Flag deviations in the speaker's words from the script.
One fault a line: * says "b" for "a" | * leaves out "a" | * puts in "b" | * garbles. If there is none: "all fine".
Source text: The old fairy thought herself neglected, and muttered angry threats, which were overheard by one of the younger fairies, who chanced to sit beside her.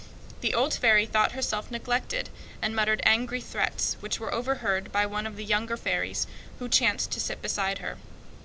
all fine